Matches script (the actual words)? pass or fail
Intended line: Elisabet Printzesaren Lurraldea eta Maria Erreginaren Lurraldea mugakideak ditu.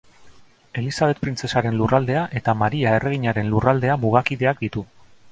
pass